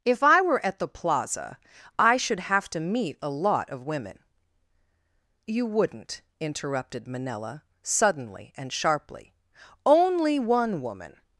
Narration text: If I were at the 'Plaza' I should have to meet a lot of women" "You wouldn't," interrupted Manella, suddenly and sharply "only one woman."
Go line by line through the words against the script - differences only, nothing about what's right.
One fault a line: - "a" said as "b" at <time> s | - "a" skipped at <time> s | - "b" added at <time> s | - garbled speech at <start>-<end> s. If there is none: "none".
none